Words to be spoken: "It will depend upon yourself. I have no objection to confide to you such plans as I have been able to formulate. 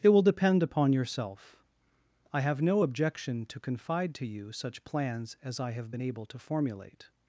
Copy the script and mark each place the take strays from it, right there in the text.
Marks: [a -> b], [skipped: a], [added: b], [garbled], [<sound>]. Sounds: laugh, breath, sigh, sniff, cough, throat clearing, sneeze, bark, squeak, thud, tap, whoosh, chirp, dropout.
"It will depend upon yourself. I have no objection to confide to you such plans as I have been able to formulate.